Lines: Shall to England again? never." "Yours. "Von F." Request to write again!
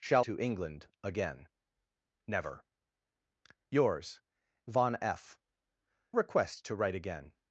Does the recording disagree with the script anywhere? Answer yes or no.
no